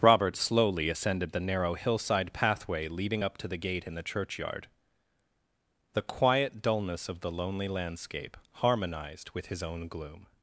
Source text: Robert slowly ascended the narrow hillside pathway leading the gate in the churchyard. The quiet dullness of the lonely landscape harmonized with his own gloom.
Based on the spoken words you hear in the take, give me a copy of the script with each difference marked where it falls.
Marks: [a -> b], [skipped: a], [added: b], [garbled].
Robert slowly ascended the narrow hillside pathway leading [added: up to] the gate in the churchyard. The quiet dullness of the lonely landscape harmonized with his own gloom.